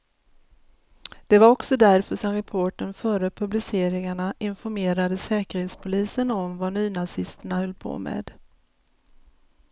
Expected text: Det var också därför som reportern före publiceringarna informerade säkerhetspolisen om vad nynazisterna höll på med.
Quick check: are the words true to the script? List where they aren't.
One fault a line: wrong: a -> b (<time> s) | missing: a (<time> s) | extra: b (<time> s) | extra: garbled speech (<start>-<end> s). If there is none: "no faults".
no faults